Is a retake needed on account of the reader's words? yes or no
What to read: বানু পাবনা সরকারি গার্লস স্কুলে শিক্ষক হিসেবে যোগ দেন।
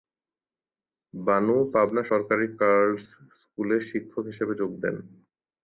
no